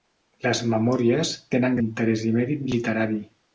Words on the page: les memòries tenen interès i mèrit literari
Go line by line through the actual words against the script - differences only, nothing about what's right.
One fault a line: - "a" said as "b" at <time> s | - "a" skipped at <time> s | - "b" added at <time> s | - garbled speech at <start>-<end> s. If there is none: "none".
none